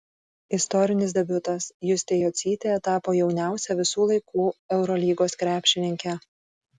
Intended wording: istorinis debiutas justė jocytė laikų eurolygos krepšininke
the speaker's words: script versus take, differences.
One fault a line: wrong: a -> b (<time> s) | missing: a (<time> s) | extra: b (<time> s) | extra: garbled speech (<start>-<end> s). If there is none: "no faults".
extra: tapo jauniausia visų (2.9 s)